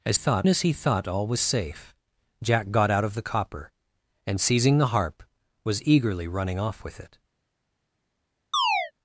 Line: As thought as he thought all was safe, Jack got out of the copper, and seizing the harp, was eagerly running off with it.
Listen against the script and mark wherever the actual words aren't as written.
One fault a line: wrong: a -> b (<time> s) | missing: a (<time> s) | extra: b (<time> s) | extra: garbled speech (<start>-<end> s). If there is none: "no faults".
no faults